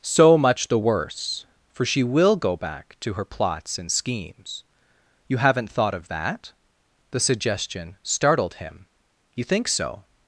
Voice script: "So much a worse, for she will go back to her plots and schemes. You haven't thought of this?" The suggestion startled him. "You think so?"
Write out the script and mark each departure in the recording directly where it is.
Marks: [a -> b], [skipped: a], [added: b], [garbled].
"So much [a -> the] worse, for she will go back to her plots and schemes. You haven't thought of [this?" -> that] The suggestion startled him. "You think so?"